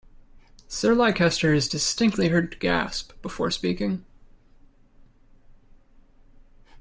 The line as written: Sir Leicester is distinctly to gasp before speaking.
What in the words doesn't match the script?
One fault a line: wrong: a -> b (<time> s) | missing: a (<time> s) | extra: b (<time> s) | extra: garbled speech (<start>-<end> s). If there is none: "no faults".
extra: heard (2.3 s)